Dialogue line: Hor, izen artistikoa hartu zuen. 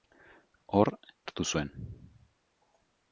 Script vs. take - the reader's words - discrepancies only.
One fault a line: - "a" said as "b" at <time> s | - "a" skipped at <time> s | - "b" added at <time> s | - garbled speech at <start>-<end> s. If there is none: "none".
- "izen artistikoa" skipped at 0.9 s